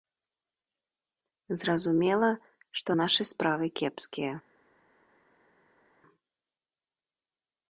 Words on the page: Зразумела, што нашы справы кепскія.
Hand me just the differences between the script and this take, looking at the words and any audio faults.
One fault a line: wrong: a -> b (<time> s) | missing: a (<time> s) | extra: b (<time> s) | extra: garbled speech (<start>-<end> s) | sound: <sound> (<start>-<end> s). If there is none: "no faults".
no faults